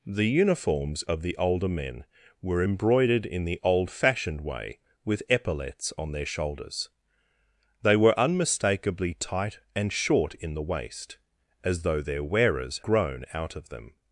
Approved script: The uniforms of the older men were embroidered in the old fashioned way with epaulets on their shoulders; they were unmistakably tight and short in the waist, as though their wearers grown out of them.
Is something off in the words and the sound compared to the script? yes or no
no